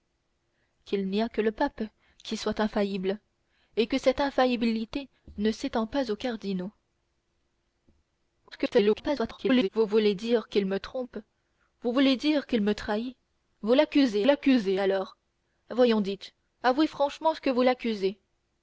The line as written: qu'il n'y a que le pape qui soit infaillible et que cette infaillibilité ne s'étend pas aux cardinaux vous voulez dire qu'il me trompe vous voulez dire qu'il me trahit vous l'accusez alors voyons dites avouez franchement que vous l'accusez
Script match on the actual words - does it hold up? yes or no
no